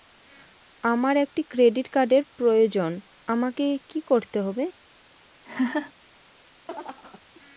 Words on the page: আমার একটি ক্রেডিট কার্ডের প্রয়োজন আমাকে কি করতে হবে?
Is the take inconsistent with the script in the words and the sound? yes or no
yes